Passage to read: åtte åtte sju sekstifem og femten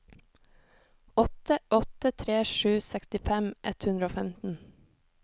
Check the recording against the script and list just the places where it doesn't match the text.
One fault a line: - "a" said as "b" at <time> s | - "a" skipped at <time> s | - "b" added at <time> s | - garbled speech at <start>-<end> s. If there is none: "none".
- "tre" added at 2.1 s
- "ett hundre" added at 3.7 s